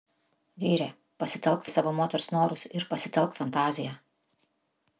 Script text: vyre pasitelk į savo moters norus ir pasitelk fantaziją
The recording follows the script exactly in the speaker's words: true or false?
true